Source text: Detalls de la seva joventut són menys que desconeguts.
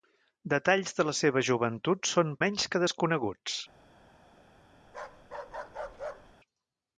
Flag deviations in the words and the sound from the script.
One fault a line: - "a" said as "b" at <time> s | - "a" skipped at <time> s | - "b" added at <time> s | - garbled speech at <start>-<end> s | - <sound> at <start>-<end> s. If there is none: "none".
- bark at 4.9-6.4 s